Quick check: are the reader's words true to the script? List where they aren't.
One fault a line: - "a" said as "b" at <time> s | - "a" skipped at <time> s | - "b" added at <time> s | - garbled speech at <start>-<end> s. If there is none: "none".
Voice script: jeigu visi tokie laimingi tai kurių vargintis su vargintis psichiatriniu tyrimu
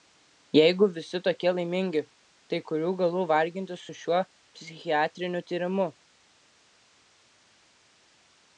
- "galų" added at 3.0 s
- "vargintis" said as "šiuo" at 4.0 s